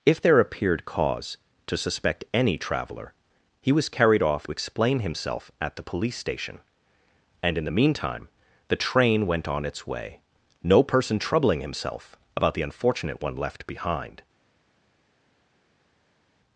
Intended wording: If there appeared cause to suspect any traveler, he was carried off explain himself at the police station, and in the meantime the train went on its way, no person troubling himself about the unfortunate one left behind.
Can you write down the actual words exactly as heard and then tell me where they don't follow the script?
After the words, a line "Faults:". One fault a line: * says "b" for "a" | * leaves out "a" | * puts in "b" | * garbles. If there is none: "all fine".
If there appeared cause to suspect any traveler, he was carried off explain himself at the police station, and in the meantime the train went on its way, no person troubling himself about the unfortunate one left behind.
Faults:
all fine